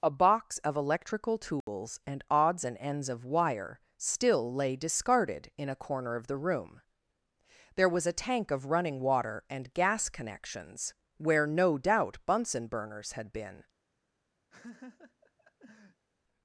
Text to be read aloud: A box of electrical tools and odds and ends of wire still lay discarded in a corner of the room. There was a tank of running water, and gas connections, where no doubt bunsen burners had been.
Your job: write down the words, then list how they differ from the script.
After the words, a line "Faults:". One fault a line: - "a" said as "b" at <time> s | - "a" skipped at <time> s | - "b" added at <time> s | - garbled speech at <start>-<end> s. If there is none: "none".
A box of electrical tools and odds and ends of wire still lay discarded in a corner of the room. There was a tank of running water, and gas connections, where no doubt bunsen burners had been.
Faults:
none